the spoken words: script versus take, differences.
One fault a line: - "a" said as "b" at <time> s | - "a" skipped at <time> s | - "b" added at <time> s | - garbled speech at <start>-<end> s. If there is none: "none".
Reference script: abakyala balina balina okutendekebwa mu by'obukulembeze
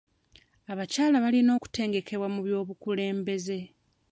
- "balina" skipped at 1.5 s